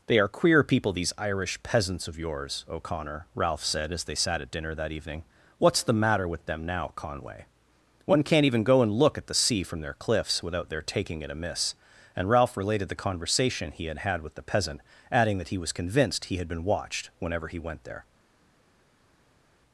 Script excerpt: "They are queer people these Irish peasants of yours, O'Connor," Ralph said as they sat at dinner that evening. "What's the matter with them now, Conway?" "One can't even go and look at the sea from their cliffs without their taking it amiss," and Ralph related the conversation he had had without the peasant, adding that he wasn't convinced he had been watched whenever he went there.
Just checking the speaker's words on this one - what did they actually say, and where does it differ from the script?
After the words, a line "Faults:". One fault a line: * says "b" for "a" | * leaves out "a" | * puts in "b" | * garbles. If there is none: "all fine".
"They are queer people these Irish peasants of yours, O'Connor," Ralph said as they sat at dinner that evening. "What's the matter with them now, Conway?" "One can't even go and look at the sea from their cliffs without their taking it amiss," and Ralph related the conversation he had had with the peasant, adding that he was convinced he had been watched whenever he went there.
Faults:
* says "with" for "without"
* says "was" for "wasn't"